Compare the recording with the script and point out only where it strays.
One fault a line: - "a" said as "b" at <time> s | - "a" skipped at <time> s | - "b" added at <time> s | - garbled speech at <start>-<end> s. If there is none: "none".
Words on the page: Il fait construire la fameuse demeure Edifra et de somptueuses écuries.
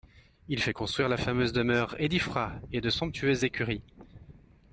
none